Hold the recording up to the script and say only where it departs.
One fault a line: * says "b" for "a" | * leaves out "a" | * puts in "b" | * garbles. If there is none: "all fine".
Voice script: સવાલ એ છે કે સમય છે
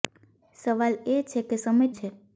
all fine